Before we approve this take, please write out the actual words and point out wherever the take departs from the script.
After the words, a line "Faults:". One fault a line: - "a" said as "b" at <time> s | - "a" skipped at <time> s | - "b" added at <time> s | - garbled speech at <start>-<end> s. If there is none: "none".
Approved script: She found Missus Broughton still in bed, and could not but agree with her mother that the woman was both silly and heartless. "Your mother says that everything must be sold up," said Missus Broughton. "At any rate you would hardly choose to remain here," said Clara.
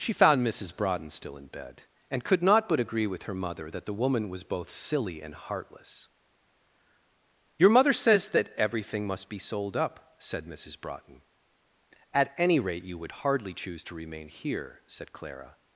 She found Missus Broughton still in bed, and could not but agree with her mother that the woman was both silly and heartless. "Your mother says that everything must be sold up," said Missus Broughton. "At any rate you would hardly choose to remain here," said Clara.
Faults:
none